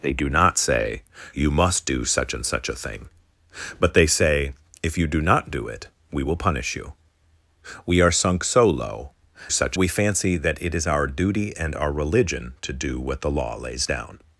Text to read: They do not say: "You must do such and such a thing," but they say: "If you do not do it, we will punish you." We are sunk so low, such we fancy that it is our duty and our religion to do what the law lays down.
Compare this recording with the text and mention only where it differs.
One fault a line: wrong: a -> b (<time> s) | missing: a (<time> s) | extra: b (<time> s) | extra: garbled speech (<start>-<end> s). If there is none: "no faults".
no faults